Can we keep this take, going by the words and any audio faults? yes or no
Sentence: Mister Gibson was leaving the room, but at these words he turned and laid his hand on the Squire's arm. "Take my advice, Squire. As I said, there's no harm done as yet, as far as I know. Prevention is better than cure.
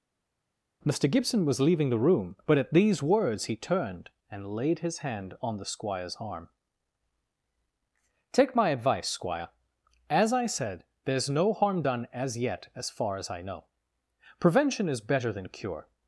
yes